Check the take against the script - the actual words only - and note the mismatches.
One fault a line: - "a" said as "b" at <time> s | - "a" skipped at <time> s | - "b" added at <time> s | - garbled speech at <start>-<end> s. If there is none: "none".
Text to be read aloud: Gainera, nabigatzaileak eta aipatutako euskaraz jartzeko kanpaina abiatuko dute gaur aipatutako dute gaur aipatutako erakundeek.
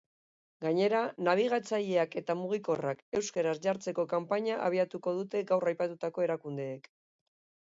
- "aipatutako" said as "mugikorrak" at 2.4 s
- "dute gaur aipatutako" skipped at 6.2 s